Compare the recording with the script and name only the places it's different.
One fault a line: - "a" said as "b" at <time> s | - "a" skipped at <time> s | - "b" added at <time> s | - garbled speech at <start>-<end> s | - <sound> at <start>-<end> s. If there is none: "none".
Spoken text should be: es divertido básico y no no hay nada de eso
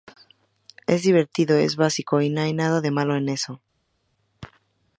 - "es" added at 1.6 s
- "no" skipped at 2.4 s
- "malo en" added at 2.9 s